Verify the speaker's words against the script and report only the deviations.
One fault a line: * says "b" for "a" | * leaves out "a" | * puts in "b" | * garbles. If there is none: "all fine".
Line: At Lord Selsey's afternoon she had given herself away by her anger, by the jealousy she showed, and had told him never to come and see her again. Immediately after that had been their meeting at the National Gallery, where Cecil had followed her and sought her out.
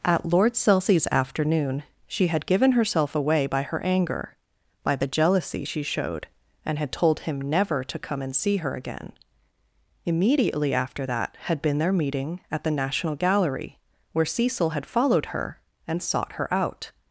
all fine